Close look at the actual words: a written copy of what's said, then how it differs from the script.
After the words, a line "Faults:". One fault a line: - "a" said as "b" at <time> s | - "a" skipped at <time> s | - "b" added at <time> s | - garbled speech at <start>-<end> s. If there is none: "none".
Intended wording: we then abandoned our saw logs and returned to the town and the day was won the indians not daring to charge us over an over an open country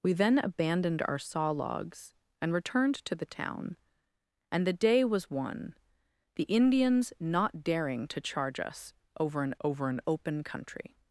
we then abandoned our saw logs and returned to the town and the day was won the indians not daring to charge us over an over an open country
Faults:
none